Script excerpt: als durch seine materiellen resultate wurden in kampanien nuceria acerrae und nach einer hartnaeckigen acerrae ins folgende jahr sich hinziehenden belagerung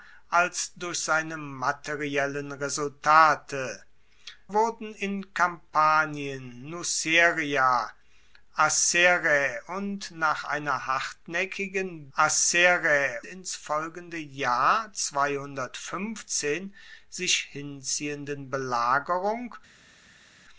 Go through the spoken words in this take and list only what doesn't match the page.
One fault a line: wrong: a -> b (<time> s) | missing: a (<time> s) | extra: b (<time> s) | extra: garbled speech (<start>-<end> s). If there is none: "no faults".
no faults